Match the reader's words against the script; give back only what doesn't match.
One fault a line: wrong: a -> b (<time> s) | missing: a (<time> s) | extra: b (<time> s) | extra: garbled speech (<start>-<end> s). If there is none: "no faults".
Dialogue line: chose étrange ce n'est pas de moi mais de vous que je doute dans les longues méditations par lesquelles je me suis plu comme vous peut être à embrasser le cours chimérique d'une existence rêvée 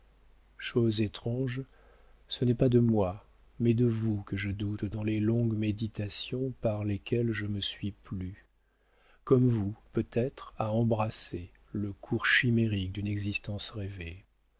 no faults